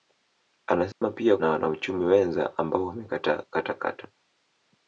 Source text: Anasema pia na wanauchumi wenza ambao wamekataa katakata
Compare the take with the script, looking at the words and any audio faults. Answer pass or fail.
fail